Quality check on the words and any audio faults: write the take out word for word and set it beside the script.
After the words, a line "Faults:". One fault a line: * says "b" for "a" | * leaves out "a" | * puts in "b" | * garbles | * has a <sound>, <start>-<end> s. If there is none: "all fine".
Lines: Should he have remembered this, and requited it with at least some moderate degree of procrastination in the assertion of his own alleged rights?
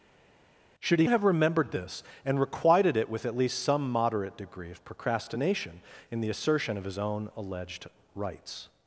Should he have remembered this, and requited it with at least some moderate degree of procrastination in the assertion of his own alleged rights?
Faults:
all fine